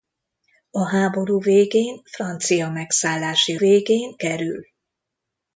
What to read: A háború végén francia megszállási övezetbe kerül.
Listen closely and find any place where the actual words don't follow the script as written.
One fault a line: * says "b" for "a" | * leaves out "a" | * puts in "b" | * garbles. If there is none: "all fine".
* says "végén" for "övezetbe"